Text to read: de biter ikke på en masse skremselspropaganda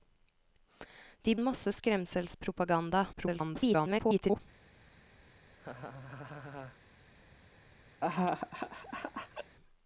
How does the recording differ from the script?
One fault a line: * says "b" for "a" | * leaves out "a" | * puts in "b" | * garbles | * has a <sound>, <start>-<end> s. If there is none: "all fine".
* leaves out "biter ikke på"
* garbles
* has a laugh, 5.5-6.8 s
* has a laugh, 8.0-9.6 s